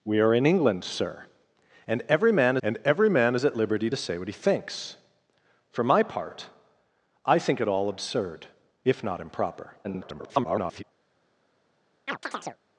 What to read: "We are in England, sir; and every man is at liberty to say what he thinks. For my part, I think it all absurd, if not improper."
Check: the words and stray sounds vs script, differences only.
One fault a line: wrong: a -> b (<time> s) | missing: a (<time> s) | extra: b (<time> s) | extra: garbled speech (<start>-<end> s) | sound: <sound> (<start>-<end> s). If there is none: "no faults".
extra: and every man (2.6 s)
extra: garbled speech (9.8-10.8 s)
sound: chirp (12.1-12.6 s)